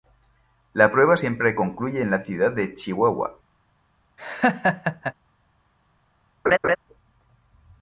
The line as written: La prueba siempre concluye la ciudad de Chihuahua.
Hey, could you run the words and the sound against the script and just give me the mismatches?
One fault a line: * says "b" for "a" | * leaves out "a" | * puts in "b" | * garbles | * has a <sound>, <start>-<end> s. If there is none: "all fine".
* puts in "en"
* has a laugh, 4.2-5.1 s
* has a laugh, 6.5-6.8 s